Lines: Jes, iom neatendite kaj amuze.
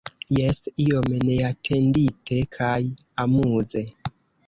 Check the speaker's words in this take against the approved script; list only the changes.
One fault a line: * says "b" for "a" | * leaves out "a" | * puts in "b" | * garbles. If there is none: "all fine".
all fine